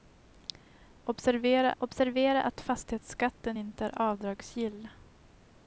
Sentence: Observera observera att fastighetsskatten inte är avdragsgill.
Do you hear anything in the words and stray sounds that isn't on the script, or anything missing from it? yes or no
no